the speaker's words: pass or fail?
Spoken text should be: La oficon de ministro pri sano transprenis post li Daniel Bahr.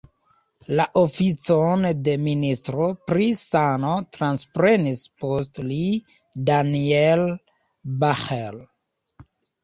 pass